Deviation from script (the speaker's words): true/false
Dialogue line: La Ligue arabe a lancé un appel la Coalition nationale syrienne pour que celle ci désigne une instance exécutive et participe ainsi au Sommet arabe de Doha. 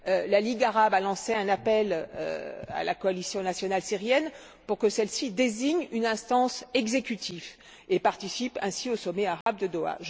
true